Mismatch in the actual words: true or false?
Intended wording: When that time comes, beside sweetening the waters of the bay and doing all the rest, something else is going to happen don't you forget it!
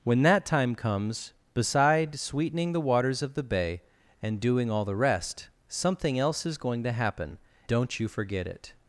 false